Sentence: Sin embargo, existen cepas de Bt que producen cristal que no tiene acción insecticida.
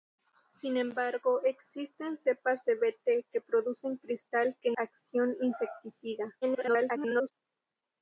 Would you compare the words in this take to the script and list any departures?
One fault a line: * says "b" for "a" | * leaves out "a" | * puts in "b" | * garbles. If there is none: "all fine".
* leaves out "no tiene"
* garbles